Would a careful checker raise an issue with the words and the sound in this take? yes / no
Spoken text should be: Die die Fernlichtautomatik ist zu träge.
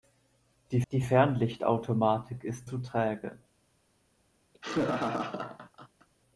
yes